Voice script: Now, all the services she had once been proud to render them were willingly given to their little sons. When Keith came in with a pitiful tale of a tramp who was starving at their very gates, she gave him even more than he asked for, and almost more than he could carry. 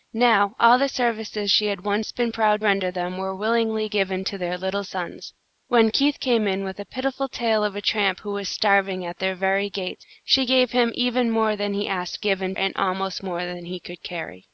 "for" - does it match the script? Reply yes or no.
no